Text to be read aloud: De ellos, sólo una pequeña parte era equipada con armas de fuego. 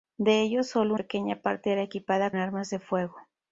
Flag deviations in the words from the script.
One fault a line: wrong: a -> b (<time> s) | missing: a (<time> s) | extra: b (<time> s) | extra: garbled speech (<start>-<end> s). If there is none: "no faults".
missing: una (0.9 s)
missing: con (2.3 s)